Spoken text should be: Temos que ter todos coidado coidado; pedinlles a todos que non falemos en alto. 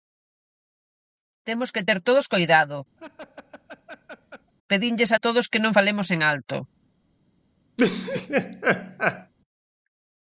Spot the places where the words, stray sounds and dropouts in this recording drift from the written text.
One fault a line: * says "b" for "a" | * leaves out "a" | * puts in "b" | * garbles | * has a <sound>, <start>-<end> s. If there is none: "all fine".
* leaves out "coidado"
* has a laugh, 3.0-4.5 s
* has a laugh, 7.8-9.3 s